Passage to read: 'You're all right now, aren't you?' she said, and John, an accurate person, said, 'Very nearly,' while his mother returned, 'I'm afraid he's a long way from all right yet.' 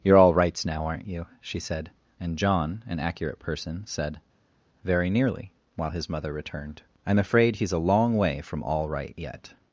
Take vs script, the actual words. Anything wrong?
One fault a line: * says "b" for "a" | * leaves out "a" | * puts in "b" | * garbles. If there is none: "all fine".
* says "rights" for "right"